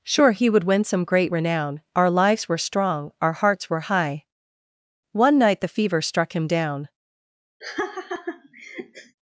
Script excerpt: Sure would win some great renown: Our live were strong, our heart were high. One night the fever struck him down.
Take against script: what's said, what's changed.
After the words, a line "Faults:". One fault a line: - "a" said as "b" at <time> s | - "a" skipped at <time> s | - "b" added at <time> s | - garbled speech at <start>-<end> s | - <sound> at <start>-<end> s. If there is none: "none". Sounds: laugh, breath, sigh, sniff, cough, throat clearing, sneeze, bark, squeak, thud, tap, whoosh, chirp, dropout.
Sure he would win some great renown: Our lives were strong, our hearts were high. One night the fever struck him down.
Faults:
- "he" added at 0.3 s
- "live" said as "lives" at 2.1 s
- "heart" said as "hearts" at 3.3 s
- laugh at 7.6-9.2 s